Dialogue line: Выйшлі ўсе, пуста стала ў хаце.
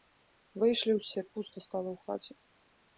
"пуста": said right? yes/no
yes